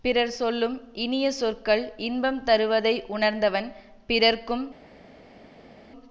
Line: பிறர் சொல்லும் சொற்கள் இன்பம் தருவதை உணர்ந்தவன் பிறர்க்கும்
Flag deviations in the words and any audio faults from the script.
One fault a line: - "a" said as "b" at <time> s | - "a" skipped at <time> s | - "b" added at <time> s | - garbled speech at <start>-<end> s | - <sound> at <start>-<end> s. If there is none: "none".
- "இனிய" added at 1.0 s